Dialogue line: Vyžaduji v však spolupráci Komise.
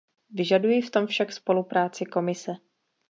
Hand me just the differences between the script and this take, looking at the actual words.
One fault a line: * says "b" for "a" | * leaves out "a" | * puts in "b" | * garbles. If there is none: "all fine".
* puts in "tom"